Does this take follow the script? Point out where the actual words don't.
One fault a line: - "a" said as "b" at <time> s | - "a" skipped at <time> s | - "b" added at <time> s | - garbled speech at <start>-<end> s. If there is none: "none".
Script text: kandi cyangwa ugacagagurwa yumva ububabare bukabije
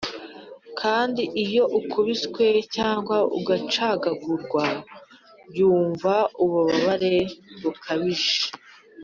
- "iyo ukubiswe" added at 1.4 s